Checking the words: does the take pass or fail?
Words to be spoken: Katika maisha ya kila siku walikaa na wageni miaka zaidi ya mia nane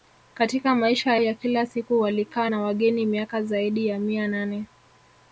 pass